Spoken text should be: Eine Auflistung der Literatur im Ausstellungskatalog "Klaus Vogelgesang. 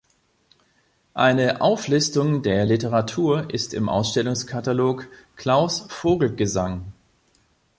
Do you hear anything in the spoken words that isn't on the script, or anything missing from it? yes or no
yes